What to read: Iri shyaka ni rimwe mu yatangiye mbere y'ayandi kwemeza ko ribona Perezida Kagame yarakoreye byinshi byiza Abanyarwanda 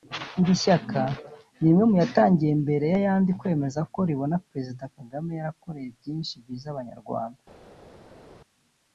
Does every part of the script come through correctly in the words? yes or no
yes